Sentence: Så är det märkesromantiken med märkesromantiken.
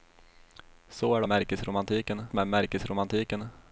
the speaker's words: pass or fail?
pass